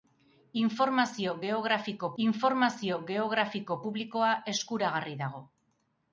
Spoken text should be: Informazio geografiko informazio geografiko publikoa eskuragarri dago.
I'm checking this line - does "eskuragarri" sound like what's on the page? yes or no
yes